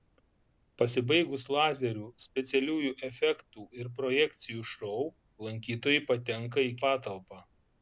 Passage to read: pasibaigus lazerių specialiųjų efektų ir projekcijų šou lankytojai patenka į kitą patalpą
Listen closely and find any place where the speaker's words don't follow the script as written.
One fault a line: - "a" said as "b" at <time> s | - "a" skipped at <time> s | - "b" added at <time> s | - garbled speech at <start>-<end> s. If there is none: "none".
- "kitą" skipped at 6.7 s